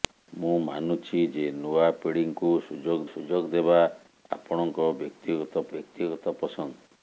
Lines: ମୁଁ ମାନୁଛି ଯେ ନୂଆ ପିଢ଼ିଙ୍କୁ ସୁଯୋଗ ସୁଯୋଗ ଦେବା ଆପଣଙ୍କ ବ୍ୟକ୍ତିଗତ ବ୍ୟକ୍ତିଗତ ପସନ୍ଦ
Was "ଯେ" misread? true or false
false